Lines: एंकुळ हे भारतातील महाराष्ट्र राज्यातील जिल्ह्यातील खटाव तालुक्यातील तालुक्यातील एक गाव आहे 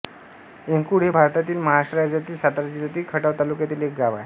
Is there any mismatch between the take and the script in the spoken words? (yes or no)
yes